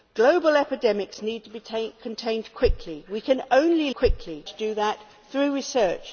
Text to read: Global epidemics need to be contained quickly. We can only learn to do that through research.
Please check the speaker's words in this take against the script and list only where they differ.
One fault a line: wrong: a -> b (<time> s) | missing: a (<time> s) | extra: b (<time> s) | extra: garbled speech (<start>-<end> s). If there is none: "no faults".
wrong: learn -> quickly (4.0 s)